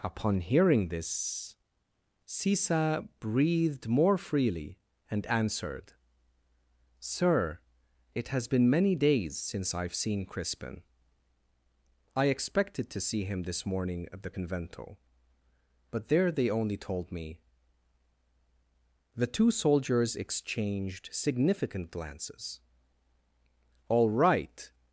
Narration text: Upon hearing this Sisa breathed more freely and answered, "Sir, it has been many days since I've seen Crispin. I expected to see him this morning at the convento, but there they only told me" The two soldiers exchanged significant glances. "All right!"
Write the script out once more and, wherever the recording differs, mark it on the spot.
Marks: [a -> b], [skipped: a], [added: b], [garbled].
Upon hearing this Sisa breathed more freely and answered, "Sir, it has been many days since I've seen Crispin. I expected to see him this morning at the convento, but there they only told me" The two soldiers exchanged significant glances. "All right!"